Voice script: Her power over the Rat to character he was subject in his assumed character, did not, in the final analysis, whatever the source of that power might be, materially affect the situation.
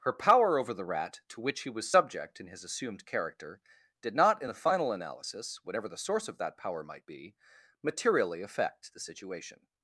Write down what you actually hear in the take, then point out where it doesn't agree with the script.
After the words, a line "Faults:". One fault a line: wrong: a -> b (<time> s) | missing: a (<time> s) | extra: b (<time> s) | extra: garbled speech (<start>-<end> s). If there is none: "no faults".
Her power over the Rat to which he was subject in his assumed character, did not, in the final analysis, whatever the source of that power might be, materially affect the situation.
Faults:
wrong: character -> which (1.4 s)